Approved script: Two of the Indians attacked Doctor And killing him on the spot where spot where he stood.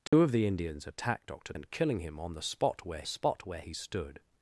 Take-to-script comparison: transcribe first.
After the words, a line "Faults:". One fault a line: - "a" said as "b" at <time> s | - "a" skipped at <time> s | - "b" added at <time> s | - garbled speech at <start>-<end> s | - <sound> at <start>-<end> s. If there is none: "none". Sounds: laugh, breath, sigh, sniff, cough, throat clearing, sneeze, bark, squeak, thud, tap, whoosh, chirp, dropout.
Two of the Indians attacked Doctor And killing him on the spot where spot where he stood.
Faults:
- dropout at 0.1-0.1 s